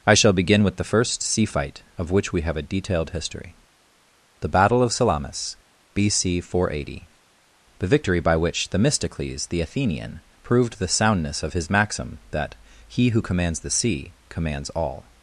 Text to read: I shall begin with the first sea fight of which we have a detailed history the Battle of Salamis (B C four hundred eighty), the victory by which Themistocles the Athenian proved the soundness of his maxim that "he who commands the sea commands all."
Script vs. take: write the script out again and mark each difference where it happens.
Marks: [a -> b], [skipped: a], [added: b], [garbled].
I shall begin with the first sea fight of which we have a detailed history the Battle of Salamis (B C four hundred eighty), the victory by which Themistocles the Athenian proved the soundness of his maxim that "he who commands the sea commands all."